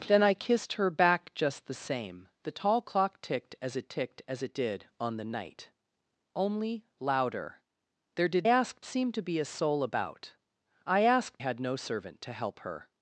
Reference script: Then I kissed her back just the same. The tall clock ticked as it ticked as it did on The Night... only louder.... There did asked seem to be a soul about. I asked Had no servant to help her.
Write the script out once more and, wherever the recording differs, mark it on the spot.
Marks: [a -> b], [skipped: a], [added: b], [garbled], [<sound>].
Then I kissed her back just the same. The tall clock ticked as it ticked as it did on The Night... only louder.... There did asked seem to be a soul about. I asked Had no servant to help her.